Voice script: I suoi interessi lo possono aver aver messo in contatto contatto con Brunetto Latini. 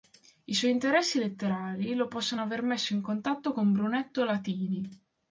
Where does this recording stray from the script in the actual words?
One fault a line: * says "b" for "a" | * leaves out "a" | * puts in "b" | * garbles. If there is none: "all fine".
* puts in "letterari"
* leaves out "aver"
* leaves out "contatto"